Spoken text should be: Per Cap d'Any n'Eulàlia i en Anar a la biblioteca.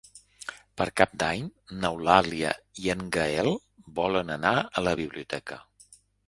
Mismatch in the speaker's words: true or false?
true